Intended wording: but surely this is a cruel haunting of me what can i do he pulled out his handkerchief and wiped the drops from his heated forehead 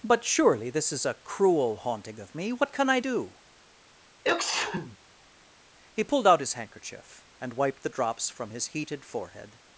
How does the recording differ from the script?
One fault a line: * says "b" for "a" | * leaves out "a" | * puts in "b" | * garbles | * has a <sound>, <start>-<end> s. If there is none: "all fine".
* has a sneeze, 4.2-5.0 s